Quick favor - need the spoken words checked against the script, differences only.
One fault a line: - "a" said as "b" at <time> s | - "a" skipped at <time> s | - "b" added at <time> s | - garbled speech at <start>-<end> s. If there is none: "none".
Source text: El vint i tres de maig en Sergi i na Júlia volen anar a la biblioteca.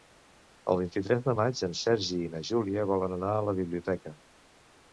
none